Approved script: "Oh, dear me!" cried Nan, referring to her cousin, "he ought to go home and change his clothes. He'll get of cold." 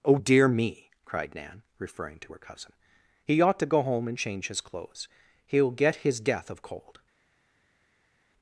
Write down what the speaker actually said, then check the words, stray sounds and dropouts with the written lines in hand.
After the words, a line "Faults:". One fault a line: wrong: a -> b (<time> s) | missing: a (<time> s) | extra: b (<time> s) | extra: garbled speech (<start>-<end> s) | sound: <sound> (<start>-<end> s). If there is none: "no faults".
"Oh, dear me!" cried Nan, referring to her cousin, "he ought to go home and change his clothes. He'll get his death of cold."
Faults:
extra: his death (6.0 s)